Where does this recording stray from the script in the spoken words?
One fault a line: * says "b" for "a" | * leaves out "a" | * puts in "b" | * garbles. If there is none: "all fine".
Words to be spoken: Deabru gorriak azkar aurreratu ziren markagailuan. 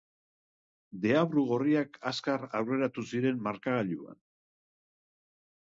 all fine